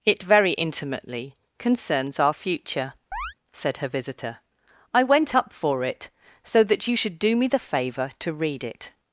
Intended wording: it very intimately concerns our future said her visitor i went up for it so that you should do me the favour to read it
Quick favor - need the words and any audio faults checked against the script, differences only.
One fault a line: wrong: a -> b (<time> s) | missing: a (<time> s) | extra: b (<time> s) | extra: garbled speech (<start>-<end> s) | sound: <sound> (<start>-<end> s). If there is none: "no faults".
sound: chirp (3.1-3.3 s)